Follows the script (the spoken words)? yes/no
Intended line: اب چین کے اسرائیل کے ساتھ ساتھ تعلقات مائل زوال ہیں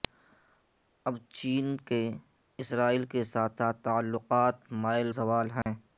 yes